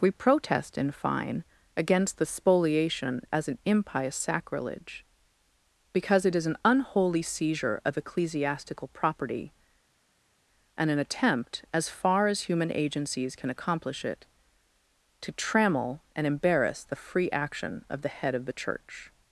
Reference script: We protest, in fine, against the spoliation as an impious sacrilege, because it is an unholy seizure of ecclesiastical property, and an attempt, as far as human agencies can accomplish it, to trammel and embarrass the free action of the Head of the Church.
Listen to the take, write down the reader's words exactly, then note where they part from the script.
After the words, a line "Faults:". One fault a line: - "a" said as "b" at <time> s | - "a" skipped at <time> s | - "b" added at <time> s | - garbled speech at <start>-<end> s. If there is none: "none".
We protest, in fine, against the spoliation as an impious sacrilege, because it is an unholy seizure of ecclesiastical property, and an attempt, as far as human agencies can accomplish it, to trammel and embarrass the free action of the Head of the Church.
Faults:
none